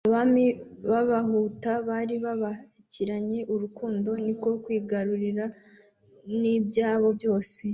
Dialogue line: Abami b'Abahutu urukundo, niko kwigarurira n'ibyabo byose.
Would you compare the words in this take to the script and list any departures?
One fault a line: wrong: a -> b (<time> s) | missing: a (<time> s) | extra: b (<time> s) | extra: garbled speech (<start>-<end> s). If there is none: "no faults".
extra: bari babakiranye (1.9 s)